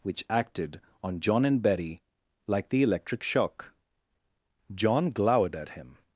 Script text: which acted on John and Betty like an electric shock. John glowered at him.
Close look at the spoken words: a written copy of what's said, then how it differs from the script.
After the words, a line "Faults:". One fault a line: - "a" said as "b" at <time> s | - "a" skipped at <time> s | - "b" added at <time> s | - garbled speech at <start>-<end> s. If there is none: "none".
which acted on John and Betty like the electric shock. John glowered at him.
Faults:
- "an" said as "the" at 2.7 s